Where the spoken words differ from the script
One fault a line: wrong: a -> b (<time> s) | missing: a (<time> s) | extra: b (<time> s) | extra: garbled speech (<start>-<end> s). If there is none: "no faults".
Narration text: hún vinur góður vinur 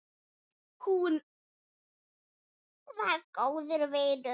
wrong: vinur -> var (3.0 s)